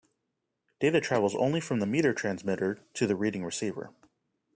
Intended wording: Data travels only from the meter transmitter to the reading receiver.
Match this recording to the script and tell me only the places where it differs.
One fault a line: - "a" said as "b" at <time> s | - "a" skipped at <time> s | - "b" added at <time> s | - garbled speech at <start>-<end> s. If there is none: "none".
none